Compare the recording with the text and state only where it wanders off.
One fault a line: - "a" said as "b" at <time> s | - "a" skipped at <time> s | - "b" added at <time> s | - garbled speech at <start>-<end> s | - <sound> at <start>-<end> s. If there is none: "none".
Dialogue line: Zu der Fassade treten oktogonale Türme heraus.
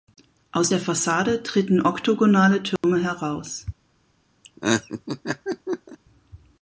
- "Zu" said as "Aus" at 0.5 s
- dropout at 2.8-2.8 s
- laugh at 4.4-6.0 s